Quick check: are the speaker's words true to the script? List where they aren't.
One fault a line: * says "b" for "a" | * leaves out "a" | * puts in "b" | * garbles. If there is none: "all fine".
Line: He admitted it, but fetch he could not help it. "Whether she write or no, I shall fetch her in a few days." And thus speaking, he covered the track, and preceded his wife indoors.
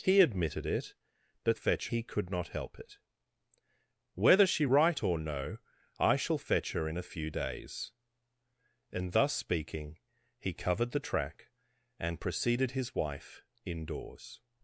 all fine